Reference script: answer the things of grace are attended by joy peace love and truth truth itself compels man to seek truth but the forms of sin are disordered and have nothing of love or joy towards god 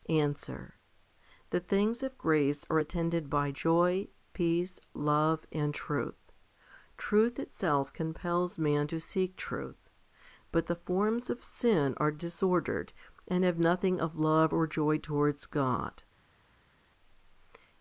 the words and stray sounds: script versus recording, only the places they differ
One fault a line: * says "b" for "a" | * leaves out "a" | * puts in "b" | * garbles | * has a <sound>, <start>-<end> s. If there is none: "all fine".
all fine